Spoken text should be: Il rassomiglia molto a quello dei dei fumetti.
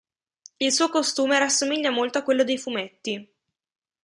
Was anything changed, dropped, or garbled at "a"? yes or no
no